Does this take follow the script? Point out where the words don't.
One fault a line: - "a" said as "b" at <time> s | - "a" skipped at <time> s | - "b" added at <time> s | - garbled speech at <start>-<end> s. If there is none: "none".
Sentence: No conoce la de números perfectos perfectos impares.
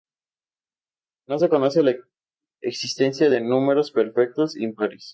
- "se" added at 1.4 s
- "existencia" added at 2.6 s
- "perfectos" skipped at 4.6 s